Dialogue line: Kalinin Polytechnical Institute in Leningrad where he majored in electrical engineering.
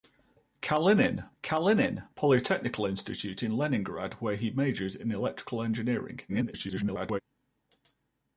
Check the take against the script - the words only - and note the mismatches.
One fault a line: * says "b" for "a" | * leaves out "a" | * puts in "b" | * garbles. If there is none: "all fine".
* puts in "kalinin"
* garbles